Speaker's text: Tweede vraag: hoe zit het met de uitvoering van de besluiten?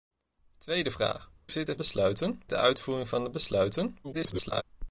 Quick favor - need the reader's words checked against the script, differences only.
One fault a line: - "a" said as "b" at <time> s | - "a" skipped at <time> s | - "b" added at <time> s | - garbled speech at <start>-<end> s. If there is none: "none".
- "hoe" skipped at 1.3 s
- "met" said as "besluiten" at 1.7 s
- garbled speech at 4.0-4.6 s